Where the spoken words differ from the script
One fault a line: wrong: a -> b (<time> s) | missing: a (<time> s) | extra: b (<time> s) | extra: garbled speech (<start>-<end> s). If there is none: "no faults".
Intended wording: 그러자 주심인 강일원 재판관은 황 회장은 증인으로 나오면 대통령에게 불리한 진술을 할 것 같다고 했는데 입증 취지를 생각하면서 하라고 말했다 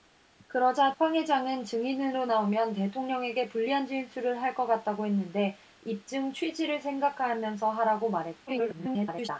missing: 주심인 강일원 재판관은 (0.9 s)
extra: garbled speech (8.5-9.3 s)